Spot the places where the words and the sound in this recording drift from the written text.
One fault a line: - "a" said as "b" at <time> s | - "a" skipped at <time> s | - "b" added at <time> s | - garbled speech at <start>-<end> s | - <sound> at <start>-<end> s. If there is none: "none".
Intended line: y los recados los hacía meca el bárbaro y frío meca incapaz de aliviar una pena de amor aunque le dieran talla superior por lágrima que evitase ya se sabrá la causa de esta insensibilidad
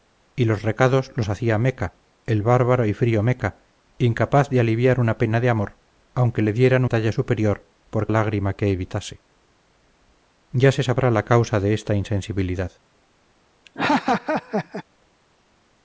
- laugh at 13.7-14.8 s